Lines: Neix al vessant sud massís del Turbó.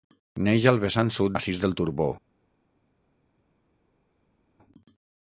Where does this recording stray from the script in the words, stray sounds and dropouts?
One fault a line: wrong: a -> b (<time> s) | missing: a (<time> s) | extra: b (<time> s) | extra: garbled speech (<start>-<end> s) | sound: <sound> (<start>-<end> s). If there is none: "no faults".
no faults